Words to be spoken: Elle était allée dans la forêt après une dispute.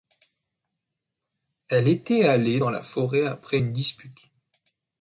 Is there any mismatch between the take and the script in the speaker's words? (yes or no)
no